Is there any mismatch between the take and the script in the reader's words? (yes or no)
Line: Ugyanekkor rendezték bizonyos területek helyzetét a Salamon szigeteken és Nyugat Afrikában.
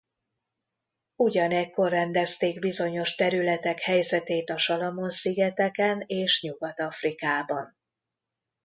no